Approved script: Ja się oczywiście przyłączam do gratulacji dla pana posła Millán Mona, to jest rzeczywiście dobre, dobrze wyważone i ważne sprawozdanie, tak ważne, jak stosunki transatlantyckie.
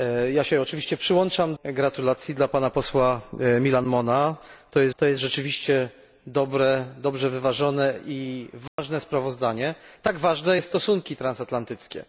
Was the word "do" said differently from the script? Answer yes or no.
yes